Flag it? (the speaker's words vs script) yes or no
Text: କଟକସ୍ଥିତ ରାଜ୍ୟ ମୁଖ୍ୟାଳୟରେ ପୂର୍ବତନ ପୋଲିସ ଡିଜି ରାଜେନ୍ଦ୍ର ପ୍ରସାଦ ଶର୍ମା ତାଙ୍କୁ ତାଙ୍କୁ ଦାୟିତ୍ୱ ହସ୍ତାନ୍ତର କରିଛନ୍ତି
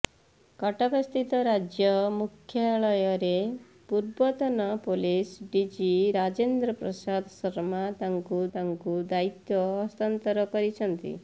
no